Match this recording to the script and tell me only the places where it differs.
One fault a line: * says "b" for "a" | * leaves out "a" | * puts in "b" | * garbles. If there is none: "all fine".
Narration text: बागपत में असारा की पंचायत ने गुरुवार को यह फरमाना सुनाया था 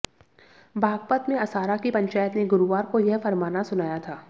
all fine